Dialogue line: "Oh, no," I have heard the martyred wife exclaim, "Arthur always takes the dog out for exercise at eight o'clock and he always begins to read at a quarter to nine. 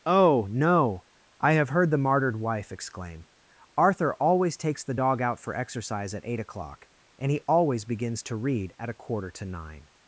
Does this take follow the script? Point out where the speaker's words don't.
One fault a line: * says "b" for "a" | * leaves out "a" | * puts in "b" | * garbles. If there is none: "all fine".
all fine